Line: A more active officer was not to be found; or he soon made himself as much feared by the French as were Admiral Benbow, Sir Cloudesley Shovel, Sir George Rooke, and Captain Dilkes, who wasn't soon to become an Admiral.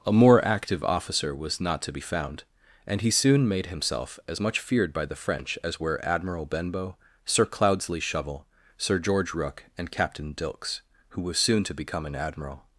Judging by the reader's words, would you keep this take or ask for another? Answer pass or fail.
fail